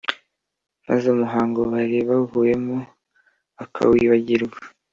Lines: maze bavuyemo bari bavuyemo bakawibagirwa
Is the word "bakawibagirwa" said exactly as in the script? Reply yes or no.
yes